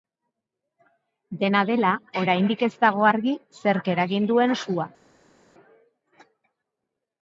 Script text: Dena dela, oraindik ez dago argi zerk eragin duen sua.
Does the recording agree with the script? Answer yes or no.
yes